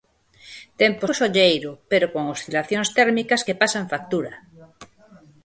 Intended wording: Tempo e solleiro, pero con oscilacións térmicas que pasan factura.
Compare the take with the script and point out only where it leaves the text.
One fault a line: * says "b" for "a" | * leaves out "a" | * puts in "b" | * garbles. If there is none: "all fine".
all fine